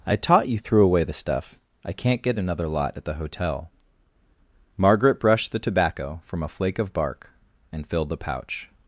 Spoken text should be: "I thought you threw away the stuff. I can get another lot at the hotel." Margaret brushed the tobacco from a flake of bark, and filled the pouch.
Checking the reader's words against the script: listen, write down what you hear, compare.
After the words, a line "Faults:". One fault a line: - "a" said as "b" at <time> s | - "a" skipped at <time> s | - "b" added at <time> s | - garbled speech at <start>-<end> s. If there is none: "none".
"I taught you threw away the stuff. I can't get another lot at the hotel." Margaret brushed the tobacco from a flake of bark, and filled the pouch.
Faults:
- "thought" said as "taught" at 0.1 s
- "can" said as "can't" at 1.9 s